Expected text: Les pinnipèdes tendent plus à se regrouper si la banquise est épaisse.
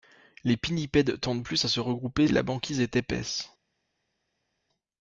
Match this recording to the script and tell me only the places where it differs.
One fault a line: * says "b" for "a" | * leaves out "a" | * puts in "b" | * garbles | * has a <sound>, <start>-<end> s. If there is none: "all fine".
* leaves out "si"